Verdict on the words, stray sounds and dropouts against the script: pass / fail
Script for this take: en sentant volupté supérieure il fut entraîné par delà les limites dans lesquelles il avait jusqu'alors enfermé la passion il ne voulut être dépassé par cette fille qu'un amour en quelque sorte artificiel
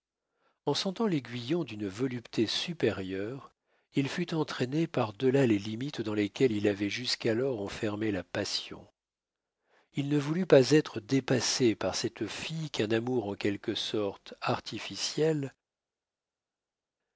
fail